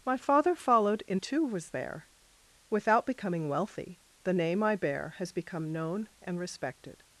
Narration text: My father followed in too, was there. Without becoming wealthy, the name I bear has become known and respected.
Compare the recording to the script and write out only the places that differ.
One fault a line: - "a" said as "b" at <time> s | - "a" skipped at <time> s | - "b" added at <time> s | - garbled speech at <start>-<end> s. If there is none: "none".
none